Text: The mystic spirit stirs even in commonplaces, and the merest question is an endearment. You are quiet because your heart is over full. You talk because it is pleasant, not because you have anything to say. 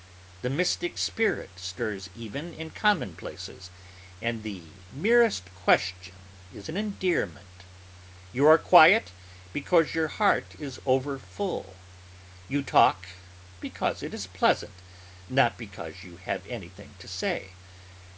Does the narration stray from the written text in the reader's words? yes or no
no